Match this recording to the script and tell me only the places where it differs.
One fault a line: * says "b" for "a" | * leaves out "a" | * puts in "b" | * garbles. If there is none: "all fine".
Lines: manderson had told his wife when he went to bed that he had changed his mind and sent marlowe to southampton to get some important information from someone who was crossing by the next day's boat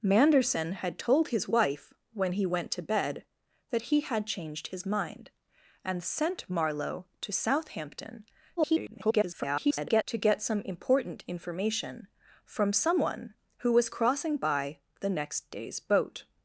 * garbles